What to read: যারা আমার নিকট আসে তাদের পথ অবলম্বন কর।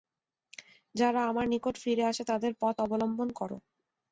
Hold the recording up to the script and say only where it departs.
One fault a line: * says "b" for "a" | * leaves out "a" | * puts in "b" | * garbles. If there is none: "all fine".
* puts in "ফিরে"